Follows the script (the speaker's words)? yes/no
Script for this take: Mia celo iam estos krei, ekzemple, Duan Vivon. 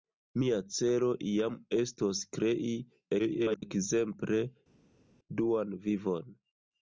no